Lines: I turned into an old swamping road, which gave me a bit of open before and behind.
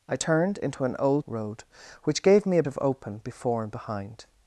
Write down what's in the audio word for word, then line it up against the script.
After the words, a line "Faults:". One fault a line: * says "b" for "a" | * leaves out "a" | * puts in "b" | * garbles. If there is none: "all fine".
I turned into an old road, which gave me a of open before and behind.
Faults:
* leaves out "swamping"
* leaves out "bit"